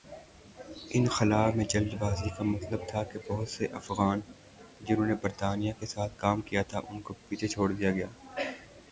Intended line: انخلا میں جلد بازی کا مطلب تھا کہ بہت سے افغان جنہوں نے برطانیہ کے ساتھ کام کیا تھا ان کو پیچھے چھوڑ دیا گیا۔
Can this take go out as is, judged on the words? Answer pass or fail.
pass